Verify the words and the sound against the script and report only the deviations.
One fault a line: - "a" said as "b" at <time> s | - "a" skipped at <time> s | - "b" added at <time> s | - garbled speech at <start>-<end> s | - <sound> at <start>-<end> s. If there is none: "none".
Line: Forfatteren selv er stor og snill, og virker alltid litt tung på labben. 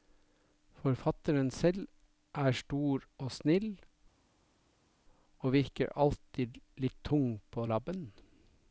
none